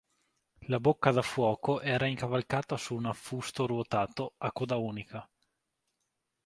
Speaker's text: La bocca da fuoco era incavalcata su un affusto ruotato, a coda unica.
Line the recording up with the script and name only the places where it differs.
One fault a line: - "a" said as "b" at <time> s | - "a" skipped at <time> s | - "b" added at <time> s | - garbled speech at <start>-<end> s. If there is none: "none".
none